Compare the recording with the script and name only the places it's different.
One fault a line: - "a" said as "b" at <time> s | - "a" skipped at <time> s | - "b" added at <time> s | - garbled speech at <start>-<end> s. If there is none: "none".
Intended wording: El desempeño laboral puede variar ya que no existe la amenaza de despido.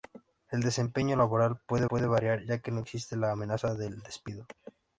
- "puede" added at 1.9 s